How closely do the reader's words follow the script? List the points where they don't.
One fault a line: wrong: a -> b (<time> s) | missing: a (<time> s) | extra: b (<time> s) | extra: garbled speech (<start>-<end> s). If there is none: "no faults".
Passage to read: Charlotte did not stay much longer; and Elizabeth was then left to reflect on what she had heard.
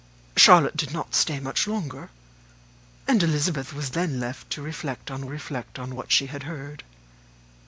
extra: reflect on (5.3 s)